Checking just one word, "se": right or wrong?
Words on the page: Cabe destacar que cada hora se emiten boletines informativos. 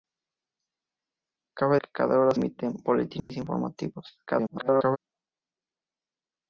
wrong